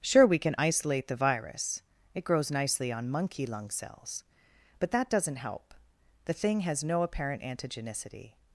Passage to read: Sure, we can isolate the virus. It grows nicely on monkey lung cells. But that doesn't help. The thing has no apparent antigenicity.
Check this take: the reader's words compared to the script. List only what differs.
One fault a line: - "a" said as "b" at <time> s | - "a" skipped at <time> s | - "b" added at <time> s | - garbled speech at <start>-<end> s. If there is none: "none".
none